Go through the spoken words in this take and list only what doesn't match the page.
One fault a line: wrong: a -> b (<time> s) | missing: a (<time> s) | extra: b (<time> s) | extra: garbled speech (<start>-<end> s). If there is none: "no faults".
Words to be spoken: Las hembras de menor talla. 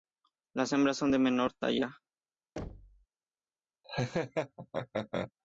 extra: son (1.0 s)